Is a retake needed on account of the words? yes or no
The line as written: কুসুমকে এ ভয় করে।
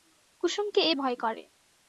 no